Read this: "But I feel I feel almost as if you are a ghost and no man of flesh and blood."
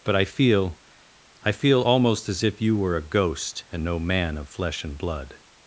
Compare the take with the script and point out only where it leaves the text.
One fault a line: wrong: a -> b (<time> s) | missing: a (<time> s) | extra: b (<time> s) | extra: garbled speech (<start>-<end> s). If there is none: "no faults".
wrong: are -> were (2.8 s)